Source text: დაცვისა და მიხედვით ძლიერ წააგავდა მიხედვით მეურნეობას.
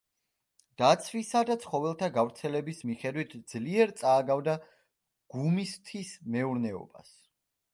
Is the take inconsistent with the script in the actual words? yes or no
yes